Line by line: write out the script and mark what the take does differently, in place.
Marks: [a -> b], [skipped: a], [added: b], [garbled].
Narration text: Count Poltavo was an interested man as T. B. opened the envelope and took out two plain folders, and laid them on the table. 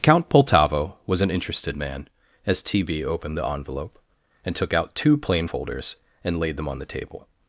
Count Poltavo was an interested man as T. B. opened the envelope and took out two plain folders, and laid them on the table.